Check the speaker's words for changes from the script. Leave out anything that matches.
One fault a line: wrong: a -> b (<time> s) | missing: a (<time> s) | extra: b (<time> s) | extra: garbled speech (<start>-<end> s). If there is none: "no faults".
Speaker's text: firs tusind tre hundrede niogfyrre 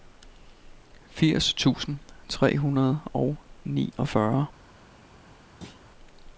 extra: og (3.1 s)